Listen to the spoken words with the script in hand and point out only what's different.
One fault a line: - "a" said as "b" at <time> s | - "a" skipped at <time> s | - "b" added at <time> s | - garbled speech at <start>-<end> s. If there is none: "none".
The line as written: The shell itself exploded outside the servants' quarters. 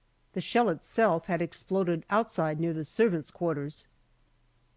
- "had" added at 1.3 s
- "near" added at 2.6 s